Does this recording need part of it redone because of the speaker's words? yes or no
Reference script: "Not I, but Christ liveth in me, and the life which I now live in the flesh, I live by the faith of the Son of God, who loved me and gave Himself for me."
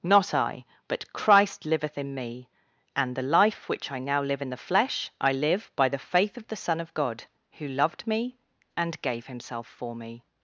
no